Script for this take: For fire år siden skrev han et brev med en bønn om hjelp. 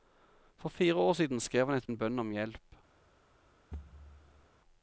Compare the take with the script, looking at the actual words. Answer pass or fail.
fail